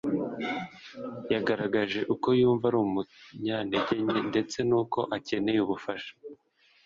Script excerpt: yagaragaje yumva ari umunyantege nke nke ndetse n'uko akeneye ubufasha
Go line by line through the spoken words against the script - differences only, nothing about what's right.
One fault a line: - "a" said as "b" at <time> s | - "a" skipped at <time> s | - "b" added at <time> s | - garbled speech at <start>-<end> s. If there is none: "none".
- "uko" added at 2.1 s
- "nke" skipped at 4.2 s